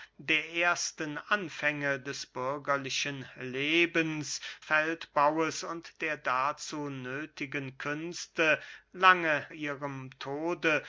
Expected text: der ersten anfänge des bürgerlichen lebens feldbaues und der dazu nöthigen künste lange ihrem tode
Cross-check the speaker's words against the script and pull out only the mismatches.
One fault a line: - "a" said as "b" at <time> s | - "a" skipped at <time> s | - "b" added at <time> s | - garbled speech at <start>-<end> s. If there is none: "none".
none